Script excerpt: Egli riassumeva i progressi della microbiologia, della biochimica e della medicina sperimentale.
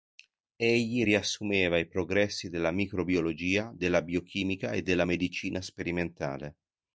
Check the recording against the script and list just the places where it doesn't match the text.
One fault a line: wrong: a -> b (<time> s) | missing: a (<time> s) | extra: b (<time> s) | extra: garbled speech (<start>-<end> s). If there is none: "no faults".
no faults